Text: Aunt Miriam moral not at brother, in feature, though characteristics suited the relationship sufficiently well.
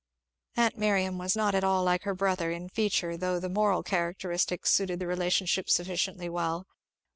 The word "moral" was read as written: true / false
false